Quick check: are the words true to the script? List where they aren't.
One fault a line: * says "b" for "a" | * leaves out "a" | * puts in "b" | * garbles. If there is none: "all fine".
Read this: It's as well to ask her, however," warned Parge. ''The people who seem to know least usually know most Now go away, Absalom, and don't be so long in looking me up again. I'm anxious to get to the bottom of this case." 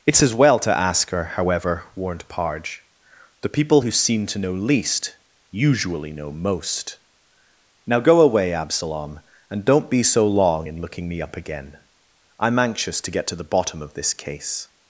all fine